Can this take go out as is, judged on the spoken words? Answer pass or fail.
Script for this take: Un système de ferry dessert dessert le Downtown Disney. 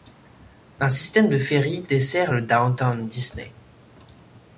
fail